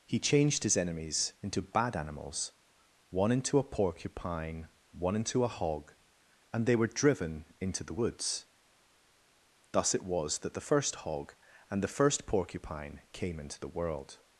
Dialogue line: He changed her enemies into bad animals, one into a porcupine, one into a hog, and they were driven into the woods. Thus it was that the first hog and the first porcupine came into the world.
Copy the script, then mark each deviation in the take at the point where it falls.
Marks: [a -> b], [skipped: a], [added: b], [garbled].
He changed [her -> his] enemies into bad animals, one into a porcupine, one into a hog, and they were driven into the woods. Thus it was that the first hog and the first porcupine came into the world.